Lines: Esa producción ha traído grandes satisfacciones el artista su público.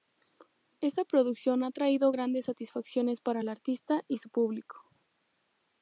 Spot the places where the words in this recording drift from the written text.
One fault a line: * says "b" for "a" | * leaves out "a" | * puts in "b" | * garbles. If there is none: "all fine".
* says "Esta" for "Esa"
* puts in "para"
* puts in "y"